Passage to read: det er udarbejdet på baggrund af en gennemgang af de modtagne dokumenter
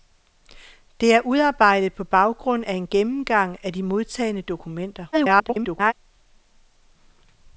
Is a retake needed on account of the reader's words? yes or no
yes